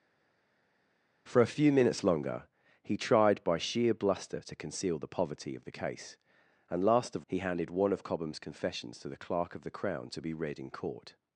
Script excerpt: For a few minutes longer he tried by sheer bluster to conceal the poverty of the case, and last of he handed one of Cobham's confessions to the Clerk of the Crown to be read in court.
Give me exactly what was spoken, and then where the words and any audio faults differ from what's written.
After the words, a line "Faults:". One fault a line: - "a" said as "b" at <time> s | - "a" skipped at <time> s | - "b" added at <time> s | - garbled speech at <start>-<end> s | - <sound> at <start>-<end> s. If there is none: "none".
For a few minutes longer he tried by sheer bluster to conceal the poverty of the case, and last of he handed one of Cobham's confessions to the Clerk of the Crown to be read in court.
Faults:
none